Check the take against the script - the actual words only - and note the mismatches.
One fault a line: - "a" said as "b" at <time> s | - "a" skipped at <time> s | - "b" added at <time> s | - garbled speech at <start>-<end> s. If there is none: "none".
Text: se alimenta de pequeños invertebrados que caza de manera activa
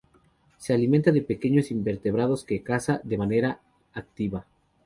none